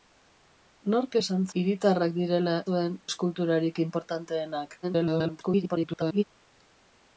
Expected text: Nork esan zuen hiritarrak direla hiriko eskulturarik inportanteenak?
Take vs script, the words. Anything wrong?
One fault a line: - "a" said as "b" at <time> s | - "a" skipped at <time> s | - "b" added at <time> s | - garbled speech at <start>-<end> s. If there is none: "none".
- "zuen" skipped at 1.4 s
- "hiriko" said as "zuen" at 2.7 s
- garbled speech at 4.8-6.2 s